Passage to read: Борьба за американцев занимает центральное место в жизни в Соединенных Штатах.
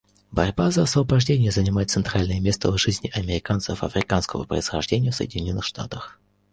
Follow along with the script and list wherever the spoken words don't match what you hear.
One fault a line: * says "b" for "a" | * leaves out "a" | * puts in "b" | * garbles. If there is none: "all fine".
* says "освобождение" for "американцев"
* puts in "американцев африканского происхождения"